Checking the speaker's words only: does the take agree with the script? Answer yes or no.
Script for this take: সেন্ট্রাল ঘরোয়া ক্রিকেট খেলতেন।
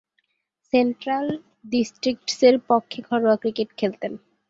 no